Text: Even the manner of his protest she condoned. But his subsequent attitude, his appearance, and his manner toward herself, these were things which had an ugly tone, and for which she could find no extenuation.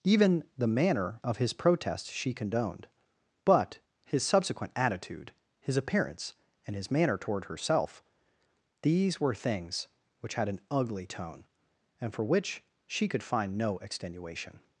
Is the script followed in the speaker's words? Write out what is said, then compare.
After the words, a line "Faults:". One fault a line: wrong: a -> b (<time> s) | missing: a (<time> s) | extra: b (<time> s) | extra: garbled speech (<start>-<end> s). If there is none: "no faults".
Even the manner of his protest she condoned. But his subsequent attitude, his appearance, and his manner toward herself, these were things which had an ugly tone, and for which she could find no extenuation.
Faults:
no faults